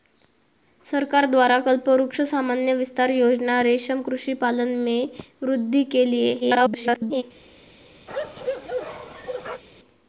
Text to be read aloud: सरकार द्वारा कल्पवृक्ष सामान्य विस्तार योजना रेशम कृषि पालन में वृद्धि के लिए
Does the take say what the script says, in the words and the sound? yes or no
no